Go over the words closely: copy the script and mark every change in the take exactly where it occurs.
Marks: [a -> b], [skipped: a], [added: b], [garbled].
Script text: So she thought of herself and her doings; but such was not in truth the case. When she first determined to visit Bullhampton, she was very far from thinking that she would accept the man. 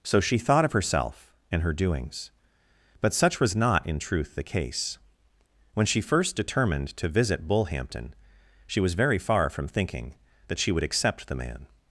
So she thought of herself and her doings; but such was not in truth the case. When she first determined to visit Bullhampton, she was very far from thinking that she would accept the man.